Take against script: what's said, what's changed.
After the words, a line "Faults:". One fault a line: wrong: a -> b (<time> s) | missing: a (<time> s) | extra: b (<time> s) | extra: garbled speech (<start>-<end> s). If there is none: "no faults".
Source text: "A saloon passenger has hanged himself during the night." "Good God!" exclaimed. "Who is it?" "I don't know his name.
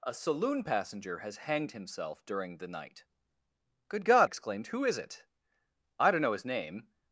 "A saloon passenger has hanged himself during the night." "Good God!" exclaimed. "Who is it?" "I don't know his name.
Faults:
no faults